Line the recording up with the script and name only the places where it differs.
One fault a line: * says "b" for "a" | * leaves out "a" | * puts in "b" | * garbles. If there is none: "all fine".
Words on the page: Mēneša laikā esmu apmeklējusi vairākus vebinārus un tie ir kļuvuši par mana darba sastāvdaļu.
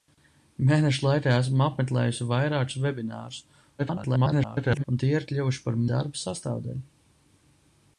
* garbles
* leaves out "mana"